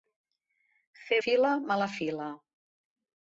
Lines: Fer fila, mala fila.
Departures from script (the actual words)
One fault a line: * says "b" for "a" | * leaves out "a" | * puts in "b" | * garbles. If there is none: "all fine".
all fine